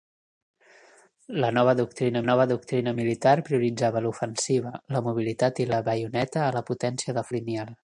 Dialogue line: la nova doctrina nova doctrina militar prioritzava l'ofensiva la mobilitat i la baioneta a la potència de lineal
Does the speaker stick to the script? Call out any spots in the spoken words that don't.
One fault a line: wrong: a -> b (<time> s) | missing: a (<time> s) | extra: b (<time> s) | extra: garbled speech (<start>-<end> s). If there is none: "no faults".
no faults